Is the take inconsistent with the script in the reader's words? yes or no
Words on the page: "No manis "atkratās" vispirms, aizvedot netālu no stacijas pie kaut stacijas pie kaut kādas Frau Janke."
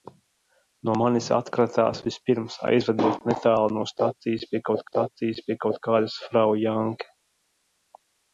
no